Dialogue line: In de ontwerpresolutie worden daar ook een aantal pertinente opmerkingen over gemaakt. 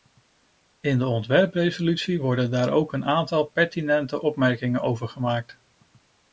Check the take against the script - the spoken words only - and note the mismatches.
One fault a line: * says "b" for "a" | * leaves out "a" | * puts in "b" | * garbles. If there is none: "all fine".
all fine